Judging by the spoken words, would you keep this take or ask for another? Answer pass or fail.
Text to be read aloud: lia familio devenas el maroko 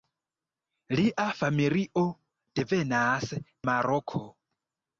fail